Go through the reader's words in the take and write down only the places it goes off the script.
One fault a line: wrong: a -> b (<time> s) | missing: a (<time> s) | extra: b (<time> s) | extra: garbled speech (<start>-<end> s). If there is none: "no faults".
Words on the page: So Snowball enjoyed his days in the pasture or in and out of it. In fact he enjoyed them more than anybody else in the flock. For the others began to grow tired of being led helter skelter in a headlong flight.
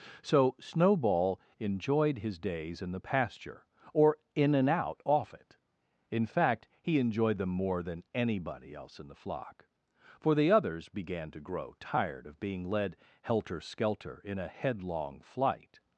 wrong: of -> off (5.0 s)